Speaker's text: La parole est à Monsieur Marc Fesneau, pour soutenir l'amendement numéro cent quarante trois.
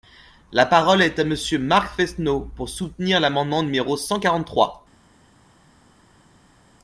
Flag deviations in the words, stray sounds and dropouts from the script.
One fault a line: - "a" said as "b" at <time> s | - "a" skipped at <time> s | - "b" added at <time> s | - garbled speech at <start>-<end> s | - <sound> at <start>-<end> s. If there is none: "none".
none